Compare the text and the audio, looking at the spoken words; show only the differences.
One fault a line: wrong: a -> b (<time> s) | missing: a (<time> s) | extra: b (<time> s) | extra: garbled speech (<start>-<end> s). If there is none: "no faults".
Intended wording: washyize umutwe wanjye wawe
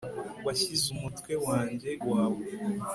no faults